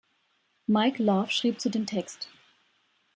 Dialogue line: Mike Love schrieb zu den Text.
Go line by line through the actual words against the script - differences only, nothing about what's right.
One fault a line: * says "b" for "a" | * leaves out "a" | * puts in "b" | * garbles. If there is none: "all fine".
all fine